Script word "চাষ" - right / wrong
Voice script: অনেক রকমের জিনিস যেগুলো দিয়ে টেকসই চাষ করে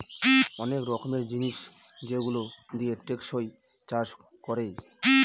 right